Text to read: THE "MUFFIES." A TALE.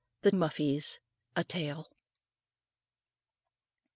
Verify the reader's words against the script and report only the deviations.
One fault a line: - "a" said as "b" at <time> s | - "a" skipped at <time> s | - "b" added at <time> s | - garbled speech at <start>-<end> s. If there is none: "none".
none